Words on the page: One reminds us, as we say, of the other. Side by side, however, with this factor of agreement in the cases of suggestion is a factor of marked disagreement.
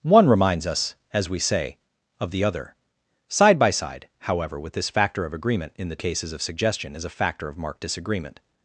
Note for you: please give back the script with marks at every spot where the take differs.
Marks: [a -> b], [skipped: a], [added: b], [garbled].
One reminds us, as we say, of the other. Side by side, however, with this factor of agreement in the cases of suggestion is a factor of marked disagreement.